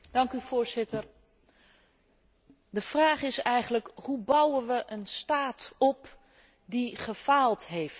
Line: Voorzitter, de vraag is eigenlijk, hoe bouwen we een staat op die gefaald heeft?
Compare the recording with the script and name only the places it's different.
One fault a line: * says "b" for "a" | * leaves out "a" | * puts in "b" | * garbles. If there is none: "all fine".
all fine